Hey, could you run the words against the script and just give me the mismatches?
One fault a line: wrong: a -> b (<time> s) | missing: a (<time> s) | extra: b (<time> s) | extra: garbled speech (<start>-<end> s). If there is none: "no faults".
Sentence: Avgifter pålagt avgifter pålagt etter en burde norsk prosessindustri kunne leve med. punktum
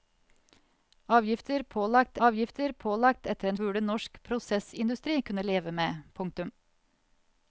no faults